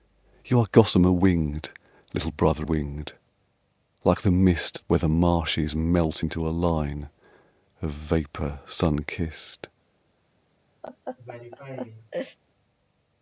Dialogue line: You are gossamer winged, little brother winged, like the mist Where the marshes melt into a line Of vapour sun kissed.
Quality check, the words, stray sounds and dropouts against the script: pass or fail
fail